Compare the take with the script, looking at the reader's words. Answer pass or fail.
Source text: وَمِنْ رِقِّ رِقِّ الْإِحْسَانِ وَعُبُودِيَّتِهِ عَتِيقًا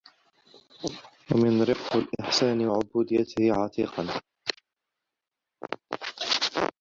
fail